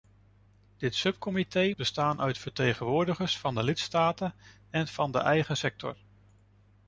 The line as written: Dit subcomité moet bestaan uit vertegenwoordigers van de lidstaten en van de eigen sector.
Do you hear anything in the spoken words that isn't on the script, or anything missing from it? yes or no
yes